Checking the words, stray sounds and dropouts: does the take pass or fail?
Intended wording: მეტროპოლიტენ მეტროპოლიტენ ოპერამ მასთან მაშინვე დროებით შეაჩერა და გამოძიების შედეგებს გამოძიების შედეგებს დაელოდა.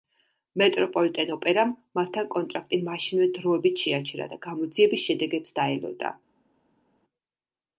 fail